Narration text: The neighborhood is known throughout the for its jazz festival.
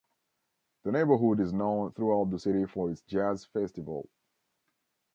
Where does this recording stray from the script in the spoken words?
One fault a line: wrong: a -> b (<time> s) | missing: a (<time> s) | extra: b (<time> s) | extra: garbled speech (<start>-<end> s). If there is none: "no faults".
extra: city (2.4 s)